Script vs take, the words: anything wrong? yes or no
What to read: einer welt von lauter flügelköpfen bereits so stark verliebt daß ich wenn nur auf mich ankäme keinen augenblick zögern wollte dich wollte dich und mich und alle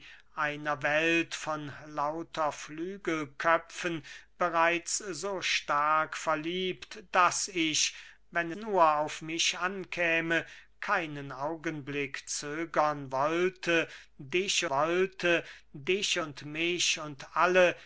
no